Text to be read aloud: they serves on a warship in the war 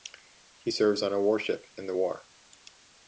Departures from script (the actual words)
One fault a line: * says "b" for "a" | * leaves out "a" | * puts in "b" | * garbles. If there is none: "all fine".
* says "he" for "they"